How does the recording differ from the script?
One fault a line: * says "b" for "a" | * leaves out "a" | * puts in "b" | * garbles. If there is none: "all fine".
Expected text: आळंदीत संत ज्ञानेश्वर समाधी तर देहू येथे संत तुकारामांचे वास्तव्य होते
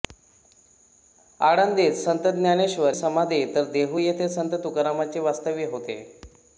all fine